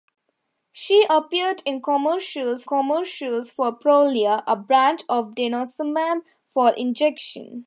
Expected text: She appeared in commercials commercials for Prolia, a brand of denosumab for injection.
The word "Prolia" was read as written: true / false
true